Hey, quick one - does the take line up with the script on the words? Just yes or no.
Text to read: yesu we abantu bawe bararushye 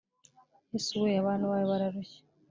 yes